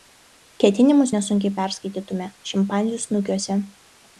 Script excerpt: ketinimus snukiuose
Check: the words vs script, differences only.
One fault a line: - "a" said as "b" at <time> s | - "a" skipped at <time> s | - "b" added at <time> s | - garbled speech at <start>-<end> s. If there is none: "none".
- "nesunkiai perskaitytume šimpanzių" added at 1.2 s